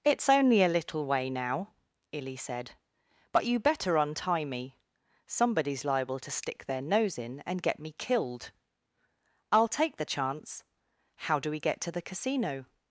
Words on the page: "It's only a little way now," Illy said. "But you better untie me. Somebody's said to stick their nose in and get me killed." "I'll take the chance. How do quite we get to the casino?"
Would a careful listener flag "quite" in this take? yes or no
yes